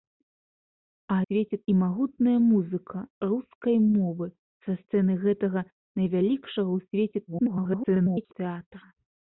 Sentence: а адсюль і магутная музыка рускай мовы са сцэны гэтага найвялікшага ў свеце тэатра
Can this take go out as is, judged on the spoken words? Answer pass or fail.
fail